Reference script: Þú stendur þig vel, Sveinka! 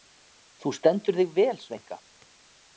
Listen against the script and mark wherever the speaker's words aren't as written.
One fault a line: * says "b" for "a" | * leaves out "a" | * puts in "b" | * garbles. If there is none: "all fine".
all fine